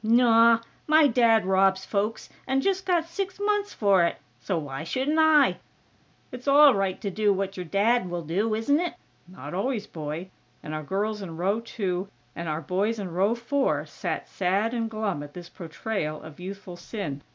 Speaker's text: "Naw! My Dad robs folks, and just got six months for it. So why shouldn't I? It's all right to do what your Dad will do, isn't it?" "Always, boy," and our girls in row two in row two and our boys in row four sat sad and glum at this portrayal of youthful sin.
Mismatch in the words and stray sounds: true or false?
true